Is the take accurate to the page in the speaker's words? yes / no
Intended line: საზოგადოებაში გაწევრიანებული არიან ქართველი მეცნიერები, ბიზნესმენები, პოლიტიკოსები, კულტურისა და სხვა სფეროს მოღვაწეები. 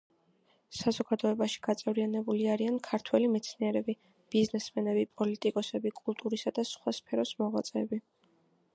yes